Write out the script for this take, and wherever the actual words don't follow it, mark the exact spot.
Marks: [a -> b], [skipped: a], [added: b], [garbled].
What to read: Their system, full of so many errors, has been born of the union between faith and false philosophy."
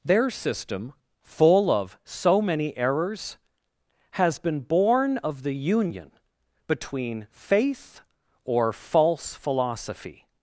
Their system, full of so many errors, has been born of the union between faith [and -> or] false philosophy."